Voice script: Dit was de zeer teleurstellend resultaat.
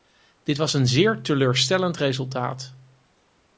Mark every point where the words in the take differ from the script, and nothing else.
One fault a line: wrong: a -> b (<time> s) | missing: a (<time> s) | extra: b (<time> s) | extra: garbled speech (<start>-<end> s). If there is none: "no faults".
wrong: de -> een (0.7 s)